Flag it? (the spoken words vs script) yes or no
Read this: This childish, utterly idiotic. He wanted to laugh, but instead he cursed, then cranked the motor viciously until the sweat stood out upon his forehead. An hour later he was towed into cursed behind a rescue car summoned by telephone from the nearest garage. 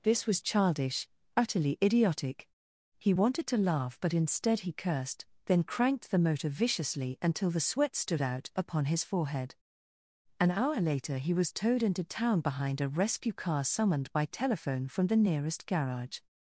yes